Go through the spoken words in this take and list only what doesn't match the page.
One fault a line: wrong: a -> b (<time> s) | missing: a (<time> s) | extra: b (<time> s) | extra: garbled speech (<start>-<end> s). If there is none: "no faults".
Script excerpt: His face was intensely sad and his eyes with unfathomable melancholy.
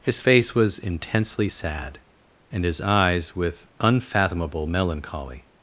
no faults